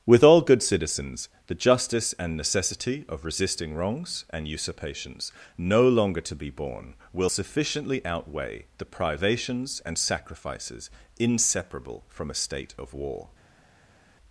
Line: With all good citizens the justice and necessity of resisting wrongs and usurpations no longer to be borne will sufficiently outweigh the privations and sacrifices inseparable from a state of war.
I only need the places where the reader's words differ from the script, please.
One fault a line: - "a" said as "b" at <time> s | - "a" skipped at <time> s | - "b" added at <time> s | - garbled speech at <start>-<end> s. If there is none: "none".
none